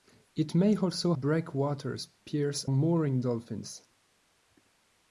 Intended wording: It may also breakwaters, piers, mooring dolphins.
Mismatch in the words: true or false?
false